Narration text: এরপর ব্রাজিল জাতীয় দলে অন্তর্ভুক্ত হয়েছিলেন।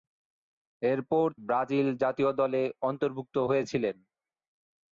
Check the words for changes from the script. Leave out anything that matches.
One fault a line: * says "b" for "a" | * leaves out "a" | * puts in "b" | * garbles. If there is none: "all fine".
all fine